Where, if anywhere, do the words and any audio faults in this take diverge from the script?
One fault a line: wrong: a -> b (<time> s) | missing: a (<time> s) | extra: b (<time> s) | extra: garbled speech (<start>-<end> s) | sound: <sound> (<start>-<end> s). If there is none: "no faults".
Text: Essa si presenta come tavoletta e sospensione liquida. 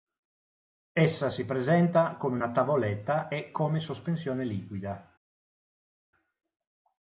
extra: una (2.4 s)
extra: come (3.5 s)